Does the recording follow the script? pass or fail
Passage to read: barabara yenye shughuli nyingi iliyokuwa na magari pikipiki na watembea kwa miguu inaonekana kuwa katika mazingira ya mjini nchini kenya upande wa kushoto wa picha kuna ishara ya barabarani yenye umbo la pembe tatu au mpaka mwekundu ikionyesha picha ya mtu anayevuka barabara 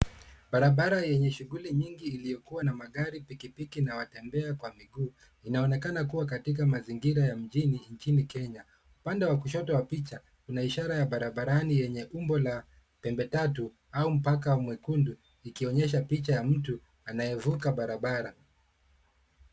pass